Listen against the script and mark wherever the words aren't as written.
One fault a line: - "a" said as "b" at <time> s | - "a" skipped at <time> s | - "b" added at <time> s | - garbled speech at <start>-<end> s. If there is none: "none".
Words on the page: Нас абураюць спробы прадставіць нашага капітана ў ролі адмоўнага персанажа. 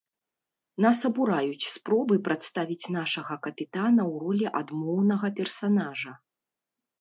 none